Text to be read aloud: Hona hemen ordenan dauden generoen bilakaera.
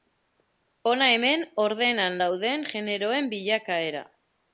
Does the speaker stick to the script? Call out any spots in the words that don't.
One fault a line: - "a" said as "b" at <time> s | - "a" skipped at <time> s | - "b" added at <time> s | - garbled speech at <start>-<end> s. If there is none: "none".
none